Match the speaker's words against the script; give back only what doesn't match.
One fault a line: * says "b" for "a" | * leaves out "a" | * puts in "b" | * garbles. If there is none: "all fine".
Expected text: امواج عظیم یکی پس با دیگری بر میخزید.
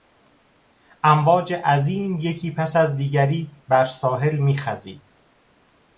* says "از" for "با"
* puts in "ساحل"